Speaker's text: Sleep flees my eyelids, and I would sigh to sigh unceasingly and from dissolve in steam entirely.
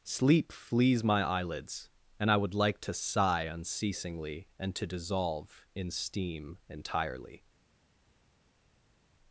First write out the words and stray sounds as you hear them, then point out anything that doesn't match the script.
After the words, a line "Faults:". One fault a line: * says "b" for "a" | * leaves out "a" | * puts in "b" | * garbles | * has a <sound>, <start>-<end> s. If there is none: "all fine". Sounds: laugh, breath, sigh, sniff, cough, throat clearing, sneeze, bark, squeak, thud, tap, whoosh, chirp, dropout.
Sleep flees my eyelids, and I would like to sigh unceasingly and to dissolve in steam entirely.
Faults:
* says "like" for "sigh"
* says "to" for "from"